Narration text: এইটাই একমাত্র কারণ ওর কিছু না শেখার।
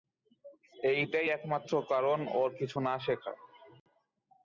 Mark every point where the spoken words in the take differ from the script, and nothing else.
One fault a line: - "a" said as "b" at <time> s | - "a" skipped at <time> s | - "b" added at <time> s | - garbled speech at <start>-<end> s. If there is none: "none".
none